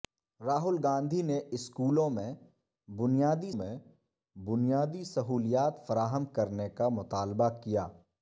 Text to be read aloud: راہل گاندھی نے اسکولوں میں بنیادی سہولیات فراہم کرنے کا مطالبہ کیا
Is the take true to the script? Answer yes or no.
no